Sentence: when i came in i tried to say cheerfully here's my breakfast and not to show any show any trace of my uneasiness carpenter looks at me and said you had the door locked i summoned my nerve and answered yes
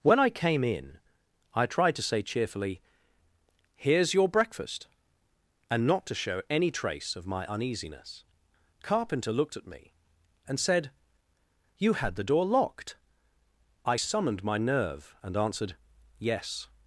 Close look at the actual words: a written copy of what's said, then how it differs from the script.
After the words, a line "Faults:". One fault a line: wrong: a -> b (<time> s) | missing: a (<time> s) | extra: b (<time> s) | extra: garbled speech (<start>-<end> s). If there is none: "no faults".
when i came in i tried to say cheerfully here's your breakfast and not to show any trace of my uneasiness carpenter looked at me and said you had the door locked i summoned my nerve and answered yes
Faults:
wrong: my -> your (4.2 s)
missing: show any (6.7 s)
wrong: looks -> looked (9.3 s)